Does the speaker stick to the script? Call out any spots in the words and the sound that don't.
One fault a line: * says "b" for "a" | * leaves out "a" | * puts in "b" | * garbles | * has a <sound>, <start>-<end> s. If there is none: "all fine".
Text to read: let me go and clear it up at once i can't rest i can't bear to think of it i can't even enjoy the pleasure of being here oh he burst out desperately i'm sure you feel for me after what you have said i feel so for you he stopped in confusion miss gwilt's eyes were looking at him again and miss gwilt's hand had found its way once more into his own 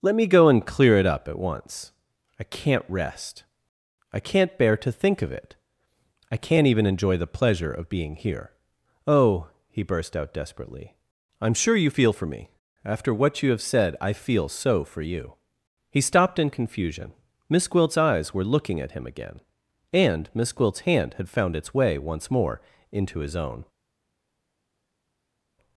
all fine